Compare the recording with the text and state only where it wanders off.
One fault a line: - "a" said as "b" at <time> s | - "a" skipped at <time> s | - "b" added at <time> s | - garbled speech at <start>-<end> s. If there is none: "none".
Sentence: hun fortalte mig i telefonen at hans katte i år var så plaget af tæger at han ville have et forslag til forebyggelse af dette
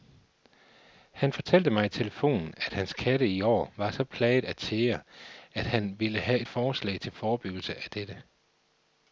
- "hun" said as "han" at 1.1 s